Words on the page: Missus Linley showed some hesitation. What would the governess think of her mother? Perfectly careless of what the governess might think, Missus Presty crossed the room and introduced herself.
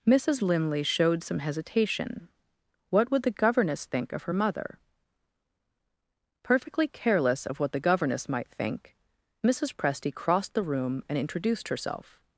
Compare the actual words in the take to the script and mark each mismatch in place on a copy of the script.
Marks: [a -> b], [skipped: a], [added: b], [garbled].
Missus Linley showed some hesitation. What would the governess think of her mother? Perfectly careless of what the governess might think, Missus Presty crossed the room and introduced herself.